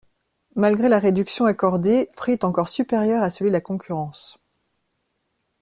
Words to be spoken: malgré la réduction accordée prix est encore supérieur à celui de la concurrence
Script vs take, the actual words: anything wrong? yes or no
no